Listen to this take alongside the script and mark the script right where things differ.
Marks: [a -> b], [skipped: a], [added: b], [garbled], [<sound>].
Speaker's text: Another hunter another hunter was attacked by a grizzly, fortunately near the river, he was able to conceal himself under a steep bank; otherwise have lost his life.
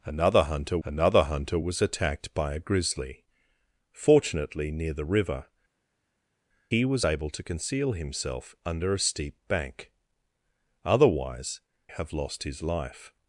Another hunter another hunter was attacked by a grizzly, fortunately near the river, he was able to conceal himself under a steep bank; otherwise have lost his life.